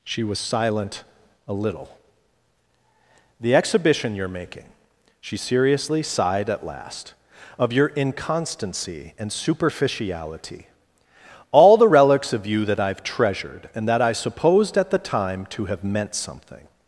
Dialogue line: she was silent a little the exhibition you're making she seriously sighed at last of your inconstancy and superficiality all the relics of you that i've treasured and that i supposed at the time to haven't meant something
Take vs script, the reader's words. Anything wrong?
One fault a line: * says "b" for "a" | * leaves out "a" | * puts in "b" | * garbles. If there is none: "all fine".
* says "have" for "haven't"